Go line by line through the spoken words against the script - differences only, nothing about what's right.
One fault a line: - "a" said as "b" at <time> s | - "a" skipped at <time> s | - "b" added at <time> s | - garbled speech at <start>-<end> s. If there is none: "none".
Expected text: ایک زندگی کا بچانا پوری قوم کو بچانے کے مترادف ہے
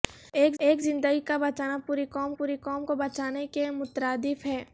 - "ایک" added at 0.6 s
- "پوری قوم" added at 2.4 s